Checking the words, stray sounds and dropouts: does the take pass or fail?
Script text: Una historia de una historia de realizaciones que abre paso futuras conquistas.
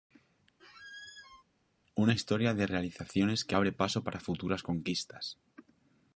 fail